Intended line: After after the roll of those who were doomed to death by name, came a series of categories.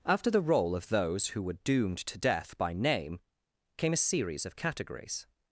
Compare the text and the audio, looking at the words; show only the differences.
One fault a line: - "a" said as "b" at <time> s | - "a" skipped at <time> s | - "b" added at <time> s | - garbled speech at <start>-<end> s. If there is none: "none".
- "after" skipped at 0.3 s